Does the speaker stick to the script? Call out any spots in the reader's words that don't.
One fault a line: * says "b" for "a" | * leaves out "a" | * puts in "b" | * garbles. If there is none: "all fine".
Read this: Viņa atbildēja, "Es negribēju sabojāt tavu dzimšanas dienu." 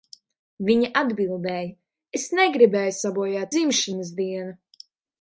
* leaves out "tavu"